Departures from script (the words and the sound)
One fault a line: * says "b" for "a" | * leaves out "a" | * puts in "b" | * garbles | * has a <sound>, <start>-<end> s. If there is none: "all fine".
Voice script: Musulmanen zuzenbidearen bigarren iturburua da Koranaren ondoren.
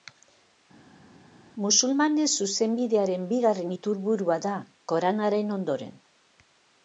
all fine